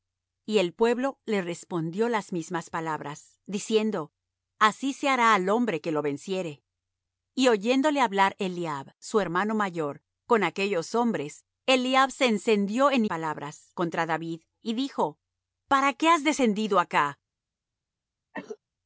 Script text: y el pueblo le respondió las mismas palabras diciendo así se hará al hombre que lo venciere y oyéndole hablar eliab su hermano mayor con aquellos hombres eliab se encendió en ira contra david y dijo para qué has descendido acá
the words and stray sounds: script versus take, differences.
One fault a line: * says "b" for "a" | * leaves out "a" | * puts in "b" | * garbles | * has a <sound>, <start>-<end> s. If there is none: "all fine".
* says "palabras" for "ira"
* has a cough, 18.3-18.6 s